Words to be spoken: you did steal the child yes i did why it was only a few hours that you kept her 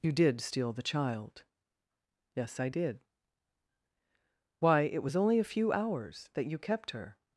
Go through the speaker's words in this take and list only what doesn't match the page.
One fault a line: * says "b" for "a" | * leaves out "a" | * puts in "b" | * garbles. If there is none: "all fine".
all fine